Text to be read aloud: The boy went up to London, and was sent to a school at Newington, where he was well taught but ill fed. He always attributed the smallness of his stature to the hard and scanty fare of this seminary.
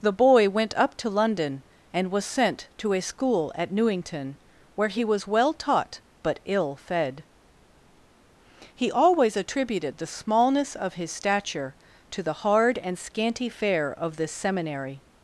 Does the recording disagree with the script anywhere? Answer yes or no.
no